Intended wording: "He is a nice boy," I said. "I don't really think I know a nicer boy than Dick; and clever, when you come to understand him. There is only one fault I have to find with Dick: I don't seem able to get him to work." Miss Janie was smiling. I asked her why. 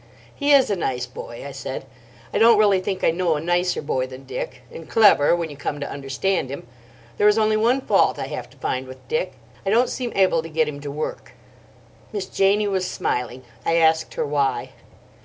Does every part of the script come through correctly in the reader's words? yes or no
yes